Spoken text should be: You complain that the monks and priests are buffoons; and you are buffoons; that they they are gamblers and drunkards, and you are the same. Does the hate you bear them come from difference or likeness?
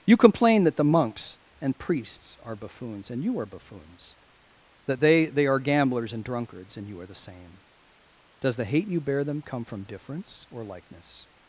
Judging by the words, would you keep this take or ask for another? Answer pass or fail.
pass